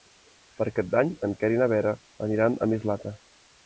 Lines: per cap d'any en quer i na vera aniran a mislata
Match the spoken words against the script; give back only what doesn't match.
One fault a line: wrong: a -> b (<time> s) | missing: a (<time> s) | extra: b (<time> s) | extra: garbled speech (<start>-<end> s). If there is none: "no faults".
no faults